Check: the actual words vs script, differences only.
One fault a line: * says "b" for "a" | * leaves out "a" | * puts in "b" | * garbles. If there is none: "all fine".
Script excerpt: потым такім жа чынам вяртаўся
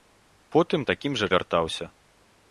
* leaves out "чынам"